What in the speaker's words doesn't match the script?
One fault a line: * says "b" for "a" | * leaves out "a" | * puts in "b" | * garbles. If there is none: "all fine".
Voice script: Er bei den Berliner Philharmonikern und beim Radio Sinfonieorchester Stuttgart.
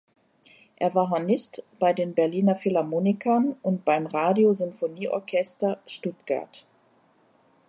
* puts in "war Hornist"